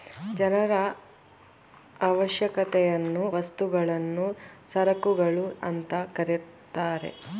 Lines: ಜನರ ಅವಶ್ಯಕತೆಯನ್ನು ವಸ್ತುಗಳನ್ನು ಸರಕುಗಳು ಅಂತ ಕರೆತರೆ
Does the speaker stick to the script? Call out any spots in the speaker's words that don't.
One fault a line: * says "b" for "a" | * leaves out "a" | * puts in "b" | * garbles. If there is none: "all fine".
all fine